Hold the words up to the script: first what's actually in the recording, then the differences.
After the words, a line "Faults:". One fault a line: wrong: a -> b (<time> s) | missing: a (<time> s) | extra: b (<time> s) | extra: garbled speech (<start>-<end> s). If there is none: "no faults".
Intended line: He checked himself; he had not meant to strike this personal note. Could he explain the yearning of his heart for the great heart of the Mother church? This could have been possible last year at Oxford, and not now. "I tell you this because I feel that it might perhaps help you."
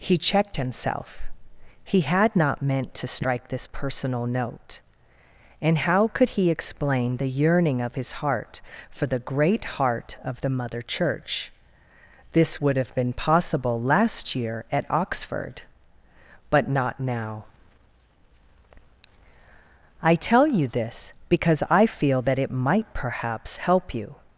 He checked himself; he had not meant to strike this personal note. And how could he explain the yearning of his heart for the great heart of the Mother church? This would have been possible last year at Oxford, but not now. "I tell you this because I feel that it might perhaps help you."
Faults:
extra: And how (5.6 s)
wrong: could -> would (12.6 s)
wrong: and -> but (16.5 s)